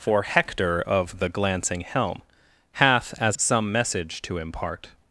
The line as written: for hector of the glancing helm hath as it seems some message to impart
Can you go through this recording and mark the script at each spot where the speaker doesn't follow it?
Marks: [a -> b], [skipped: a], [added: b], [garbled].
for hector of the glancing helm hath as [skipped: it seems] some message to impart